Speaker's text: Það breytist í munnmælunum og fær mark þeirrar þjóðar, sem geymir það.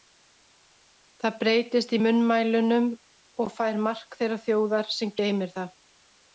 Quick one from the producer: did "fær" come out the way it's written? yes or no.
yes